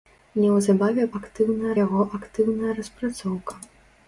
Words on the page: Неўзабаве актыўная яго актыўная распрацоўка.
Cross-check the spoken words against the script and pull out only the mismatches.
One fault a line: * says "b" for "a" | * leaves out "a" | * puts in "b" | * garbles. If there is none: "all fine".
all fine